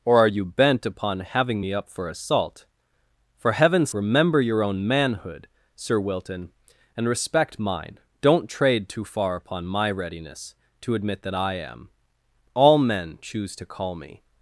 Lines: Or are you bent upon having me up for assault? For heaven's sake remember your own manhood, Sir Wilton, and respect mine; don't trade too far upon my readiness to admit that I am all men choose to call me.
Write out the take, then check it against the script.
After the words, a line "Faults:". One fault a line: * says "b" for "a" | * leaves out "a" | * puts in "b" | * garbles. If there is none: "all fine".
Or are you bent upon having me up for assault? For heaven's remember your own manhood, Sir Wilton, and respect mine; don't trade too far upon my readiness to admit that I am all men choose to call me.
Faults:
* leaves out "sake"